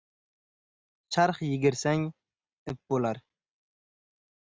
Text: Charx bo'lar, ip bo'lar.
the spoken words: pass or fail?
fail